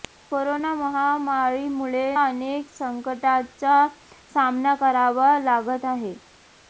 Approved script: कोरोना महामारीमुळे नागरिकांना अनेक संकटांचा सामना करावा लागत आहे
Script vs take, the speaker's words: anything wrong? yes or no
yes